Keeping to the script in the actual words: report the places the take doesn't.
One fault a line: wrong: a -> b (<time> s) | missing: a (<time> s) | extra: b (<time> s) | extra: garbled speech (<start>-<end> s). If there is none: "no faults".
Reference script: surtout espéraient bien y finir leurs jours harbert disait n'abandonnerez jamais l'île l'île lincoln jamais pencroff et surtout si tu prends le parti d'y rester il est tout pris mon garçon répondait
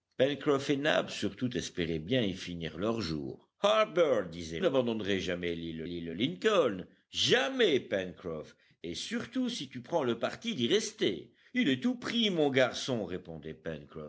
no faults